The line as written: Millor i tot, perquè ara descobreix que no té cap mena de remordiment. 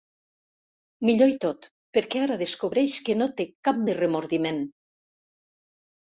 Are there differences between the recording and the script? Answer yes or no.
yes